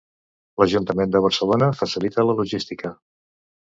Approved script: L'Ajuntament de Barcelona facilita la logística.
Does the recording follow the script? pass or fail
pass